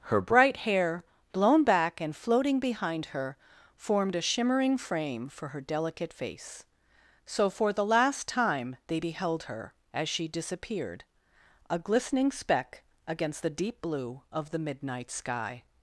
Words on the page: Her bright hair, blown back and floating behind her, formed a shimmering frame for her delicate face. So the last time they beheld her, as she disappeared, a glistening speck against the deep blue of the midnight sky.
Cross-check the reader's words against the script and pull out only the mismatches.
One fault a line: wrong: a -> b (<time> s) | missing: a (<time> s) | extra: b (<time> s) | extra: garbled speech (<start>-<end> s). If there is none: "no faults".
extra: for (7.5 s)